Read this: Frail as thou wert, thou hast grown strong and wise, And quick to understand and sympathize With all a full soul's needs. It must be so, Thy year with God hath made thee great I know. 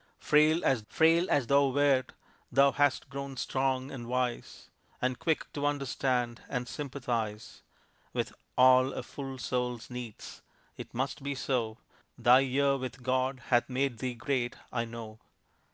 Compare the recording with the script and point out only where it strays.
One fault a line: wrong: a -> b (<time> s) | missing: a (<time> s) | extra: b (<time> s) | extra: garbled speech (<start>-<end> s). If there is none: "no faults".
extra: frail as (0.9 s)